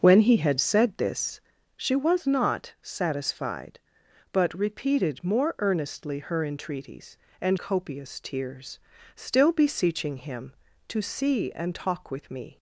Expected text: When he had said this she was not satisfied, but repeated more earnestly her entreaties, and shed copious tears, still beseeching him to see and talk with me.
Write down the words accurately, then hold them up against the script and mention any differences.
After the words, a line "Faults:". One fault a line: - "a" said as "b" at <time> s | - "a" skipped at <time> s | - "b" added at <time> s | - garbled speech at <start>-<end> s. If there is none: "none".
When he had said this she was not satisfied, but repeated more earnestly her entreaties, and copious tears, still beseeching him to see and talk with me.
Faults:
- "shed" skipped at 7.6 s